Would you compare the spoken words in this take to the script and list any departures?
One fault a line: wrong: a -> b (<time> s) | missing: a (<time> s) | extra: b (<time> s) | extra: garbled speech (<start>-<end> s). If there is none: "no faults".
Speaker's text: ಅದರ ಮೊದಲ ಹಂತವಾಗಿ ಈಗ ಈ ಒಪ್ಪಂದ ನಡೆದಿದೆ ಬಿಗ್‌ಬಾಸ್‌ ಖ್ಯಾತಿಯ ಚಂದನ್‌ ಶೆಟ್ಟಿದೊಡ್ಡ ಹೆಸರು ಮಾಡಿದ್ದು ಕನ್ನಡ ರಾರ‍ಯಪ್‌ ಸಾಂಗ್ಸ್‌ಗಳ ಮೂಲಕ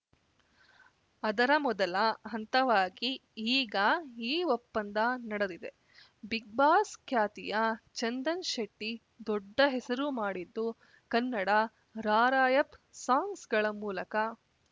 no faults